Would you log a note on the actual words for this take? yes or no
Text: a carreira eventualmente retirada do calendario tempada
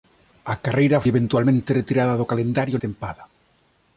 no